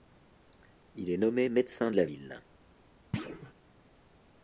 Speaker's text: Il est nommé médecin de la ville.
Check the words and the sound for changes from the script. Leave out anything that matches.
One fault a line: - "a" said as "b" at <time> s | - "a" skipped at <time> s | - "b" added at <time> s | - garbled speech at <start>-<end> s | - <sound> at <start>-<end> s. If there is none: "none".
- thud at 3.1-3.5 s